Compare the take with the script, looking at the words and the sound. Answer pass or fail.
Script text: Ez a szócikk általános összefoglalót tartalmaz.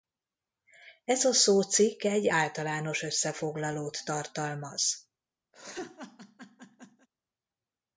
fail